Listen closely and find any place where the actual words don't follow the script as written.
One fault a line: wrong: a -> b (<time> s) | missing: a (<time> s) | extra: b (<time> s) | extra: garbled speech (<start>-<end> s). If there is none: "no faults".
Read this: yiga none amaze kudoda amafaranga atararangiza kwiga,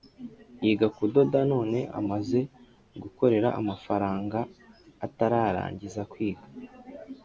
extra: kudoda (1.0 s)
wrong: kudoda -> gukorera (3.0 s)